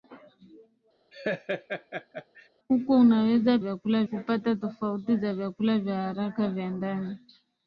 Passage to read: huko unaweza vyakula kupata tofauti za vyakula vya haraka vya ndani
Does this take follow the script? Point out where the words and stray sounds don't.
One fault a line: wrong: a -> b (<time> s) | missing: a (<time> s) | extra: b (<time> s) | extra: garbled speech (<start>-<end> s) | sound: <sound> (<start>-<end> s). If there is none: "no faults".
sound: laugh (1.1-2.5 s)